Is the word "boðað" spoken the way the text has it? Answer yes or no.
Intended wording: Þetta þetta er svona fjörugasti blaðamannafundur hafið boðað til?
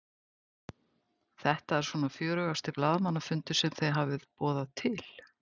yes